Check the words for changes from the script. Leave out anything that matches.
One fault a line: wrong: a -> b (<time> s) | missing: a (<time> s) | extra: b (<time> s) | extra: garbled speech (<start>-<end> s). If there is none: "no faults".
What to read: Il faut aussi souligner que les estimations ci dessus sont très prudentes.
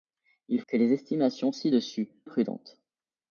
missing: faut aussi souligner (0.6 s)
missing: sont très (2.1 s)